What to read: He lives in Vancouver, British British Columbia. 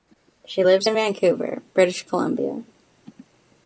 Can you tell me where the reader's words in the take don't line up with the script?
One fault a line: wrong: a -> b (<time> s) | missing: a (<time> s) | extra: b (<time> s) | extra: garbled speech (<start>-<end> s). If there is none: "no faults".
wrong: He -> She (0.5 s)
missing: British (2.0 s)